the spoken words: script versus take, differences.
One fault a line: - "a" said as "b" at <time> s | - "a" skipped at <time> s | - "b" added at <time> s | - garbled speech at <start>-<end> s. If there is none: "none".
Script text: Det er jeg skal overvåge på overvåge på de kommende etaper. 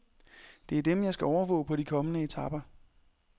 - "dem" added at 0.8 s
- "overvåge på" skipped at 1.8 s